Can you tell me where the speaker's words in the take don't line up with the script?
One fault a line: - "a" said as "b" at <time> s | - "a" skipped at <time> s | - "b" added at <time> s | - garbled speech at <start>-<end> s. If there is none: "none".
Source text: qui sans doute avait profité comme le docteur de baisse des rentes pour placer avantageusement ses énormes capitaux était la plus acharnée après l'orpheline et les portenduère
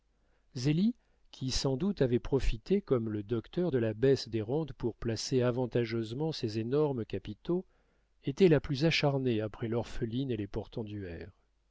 - "la" added at 3.8 s